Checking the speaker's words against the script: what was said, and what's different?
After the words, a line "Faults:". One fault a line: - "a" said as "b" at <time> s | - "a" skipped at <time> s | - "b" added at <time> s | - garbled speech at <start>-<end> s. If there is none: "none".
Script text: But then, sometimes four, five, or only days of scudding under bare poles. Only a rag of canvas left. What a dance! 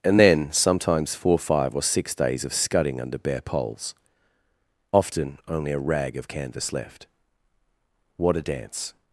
And then, sometimes four, five, or six days of scudding under bare poles. Often only a rag of canvas left. What a dance!
Faults:
- "But" said as "And" at 0.0 s
- "only" said as "six" at 1.8 s
- "Often" added at 4.9 s